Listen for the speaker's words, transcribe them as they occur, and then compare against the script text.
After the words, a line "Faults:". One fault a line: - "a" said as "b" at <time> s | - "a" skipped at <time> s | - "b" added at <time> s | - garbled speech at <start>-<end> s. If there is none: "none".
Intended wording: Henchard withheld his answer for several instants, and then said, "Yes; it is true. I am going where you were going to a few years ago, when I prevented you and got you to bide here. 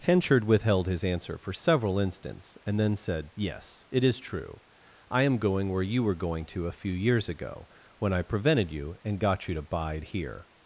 Henchard withheld his answer for several instants, and then said, "Yes; it is true. I am going where you were going to a few years ago, when I prevented you and got you to bide here.
Faults:
none